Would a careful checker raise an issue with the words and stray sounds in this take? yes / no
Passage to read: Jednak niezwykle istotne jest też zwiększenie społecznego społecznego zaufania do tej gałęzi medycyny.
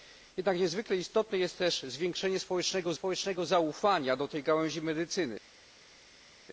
no